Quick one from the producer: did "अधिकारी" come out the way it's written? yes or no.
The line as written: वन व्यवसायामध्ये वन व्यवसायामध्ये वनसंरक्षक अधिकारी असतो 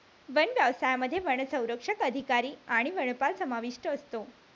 no